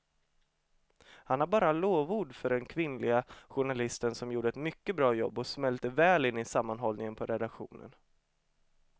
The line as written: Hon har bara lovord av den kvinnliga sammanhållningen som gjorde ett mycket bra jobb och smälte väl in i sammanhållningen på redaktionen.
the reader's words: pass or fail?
fail